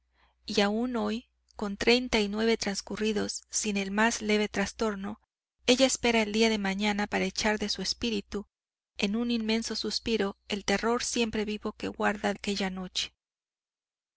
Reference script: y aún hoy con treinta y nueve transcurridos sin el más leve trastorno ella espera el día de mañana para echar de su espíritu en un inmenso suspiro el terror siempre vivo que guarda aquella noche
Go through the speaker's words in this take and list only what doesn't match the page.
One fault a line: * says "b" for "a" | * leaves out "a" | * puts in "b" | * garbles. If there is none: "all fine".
all fine